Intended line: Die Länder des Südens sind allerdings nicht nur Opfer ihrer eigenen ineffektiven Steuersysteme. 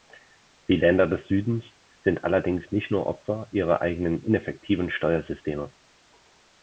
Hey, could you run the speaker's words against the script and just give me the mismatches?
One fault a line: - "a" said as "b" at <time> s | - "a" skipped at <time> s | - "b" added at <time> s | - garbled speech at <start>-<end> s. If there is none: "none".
none